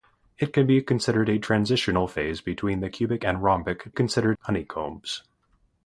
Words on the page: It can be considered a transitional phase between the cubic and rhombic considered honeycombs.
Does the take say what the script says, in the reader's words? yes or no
yes